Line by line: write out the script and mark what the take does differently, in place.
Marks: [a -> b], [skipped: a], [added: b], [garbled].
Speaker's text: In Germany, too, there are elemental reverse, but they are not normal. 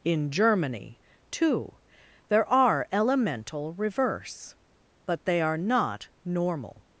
In Germany, too, there are elemental reverse, but they are not normal.